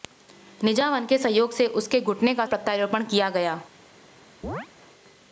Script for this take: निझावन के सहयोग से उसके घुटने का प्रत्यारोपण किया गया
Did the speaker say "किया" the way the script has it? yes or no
yes